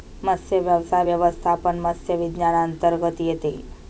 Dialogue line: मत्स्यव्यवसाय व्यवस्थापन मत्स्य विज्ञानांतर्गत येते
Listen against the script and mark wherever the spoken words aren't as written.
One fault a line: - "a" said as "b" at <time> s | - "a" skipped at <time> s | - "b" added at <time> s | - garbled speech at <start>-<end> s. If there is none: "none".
none